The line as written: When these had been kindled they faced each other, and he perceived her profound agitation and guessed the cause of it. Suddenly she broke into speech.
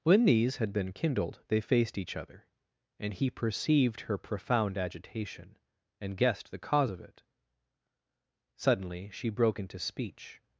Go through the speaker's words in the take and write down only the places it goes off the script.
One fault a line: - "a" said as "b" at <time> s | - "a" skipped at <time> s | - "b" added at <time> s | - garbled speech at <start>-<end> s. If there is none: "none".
none